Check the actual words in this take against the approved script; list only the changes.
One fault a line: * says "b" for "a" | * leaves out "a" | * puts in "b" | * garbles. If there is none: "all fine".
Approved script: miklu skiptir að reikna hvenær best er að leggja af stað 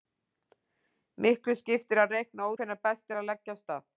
all fine